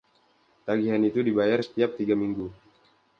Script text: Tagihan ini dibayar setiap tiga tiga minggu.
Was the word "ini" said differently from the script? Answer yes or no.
yes